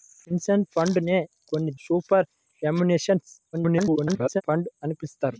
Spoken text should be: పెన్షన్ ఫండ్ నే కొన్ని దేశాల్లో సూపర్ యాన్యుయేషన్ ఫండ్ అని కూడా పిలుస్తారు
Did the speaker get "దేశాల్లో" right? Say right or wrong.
wrong